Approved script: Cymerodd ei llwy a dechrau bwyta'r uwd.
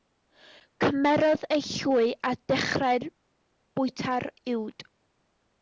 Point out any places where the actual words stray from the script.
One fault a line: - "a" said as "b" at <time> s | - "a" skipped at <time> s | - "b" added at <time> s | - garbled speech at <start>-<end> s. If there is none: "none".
none